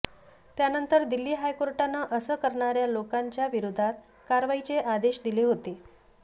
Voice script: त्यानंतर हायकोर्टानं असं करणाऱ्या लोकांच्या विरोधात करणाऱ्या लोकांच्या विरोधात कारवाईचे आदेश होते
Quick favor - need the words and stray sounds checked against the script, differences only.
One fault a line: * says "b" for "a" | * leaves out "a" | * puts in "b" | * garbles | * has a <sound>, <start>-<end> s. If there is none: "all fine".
* puts in "दिल्ली"
* leaves out "करणाऱ्या लोकांच्या विरोधात"
* puts in "दिले"